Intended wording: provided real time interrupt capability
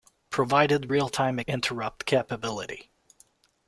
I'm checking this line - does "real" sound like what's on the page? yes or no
yes